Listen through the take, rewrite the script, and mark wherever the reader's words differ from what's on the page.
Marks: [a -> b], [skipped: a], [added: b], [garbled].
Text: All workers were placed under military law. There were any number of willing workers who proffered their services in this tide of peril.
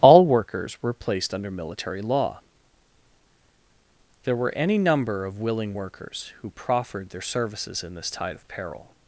All workers were placed under military law. There were any number of willing workers who proffered their services in this tide of peril.